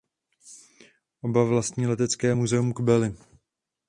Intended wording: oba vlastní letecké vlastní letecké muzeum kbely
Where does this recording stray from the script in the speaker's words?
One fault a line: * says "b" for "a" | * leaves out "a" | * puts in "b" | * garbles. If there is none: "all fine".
* leaves out "vlastní letecké"